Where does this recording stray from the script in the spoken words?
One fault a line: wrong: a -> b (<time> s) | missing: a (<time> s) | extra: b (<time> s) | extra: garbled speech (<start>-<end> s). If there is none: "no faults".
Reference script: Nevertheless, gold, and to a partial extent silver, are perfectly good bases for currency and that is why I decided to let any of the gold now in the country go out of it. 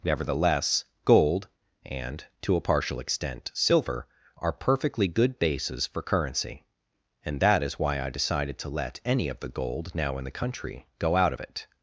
no faults